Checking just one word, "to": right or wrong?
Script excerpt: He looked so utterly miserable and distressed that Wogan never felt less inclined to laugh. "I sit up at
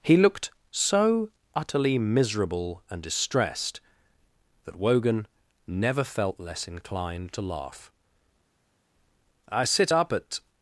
right